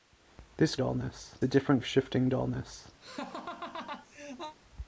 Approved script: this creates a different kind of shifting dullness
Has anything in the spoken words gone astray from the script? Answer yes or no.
yes